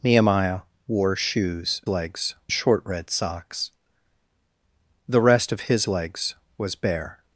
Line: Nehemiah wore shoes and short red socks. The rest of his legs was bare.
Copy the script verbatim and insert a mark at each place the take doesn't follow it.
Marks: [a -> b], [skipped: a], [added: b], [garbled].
Nehemiah wore shoes [and -> legs] short red socks. The rest of his legs was bare.